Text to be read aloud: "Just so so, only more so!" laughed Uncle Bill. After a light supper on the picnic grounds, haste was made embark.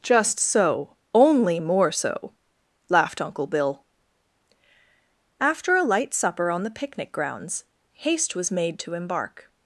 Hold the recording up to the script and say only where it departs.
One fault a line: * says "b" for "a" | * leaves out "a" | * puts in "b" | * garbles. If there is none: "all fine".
* leaves out "so"
* puts in "to"